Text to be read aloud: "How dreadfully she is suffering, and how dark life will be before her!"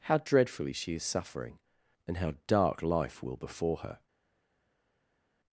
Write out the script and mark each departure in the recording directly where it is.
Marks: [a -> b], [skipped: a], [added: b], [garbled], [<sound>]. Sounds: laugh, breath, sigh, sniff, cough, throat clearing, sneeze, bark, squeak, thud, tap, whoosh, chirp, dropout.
"How dreadfully she is suffering, and how dark life will [skipped: be] before her!"